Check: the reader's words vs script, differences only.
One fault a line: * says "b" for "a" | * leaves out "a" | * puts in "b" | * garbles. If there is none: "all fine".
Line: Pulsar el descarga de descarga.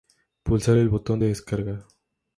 * says "botón" for "descarga"